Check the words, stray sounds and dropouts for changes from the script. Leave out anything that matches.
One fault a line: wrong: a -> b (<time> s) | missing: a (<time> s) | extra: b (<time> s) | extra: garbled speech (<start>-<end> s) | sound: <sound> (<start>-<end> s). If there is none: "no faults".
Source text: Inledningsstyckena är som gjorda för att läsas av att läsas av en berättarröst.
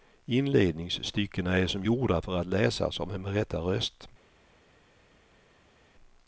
missing: att läsas av (3.1 s)